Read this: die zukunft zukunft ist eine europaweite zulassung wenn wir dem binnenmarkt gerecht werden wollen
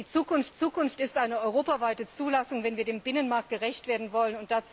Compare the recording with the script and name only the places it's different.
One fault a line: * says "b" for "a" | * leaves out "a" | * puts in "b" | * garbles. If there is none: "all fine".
all fine